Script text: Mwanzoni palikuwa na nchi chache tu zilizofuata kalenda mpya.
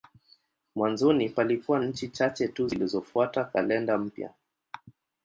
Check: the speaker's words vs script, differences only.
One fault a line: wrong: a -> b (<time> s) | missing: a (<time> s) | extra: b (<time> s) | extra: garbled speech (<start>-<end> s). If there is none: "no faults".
missing: na (1.8 s)